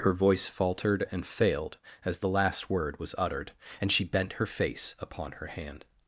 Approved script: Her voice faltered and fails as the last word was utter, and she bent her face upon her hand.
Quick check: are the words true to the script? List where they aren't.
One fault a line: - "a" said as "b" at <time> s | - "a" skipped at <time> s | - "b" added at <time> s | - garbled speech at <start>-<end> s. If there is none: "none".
- "fails" said as "failed" at 1.3 s
- "utter" said as "uttered" at 3.2 s